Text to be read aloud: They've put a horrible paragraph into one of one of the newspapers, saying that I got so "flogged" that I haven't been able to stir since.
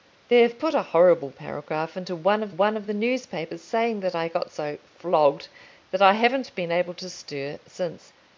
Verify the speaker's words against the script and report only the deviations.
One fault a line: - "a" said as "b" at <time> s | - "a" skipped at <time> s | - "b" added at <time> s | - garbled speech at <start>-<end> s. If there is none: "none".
none